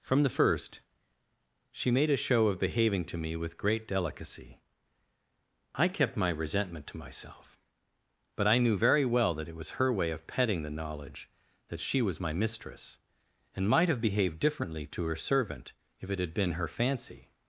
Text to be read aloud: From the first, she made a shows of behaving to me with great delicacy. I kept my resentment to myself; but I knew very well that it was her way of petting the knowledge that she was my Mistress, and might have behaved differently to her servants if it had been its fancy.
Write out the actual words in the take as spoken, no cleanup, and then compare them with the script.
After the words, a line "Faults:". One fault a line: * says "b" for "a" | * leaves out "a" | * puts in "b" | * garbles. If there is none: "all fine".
From the first, she made a show of behaving to me with great delicacy. I kept my resentment to myself; but I knew very well that it was her way of petting the knowledge that she was my Mistress, and might have behaved differently to her servant if it had been her fancy.
Faults:
* says "show" for "shows"
* says "servant" for "servants"
* says "her" for "its"